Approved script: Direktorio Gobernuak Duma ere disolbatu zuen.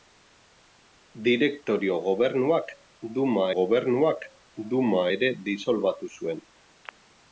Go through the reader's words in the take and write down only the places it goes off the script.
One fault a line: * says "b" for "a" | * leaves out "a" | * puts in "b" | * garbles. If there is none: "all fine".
* puts in "Gobernuak Duma"